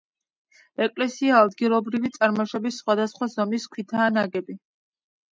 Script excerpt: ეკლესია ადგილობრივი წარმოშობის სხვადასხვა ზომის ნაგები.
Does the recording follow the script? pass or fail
fail